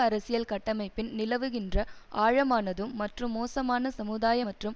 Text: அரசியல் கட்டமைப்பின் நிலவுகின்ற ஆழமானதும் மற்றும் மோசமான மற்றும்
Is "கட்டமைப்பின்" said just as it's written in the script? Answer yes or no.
yes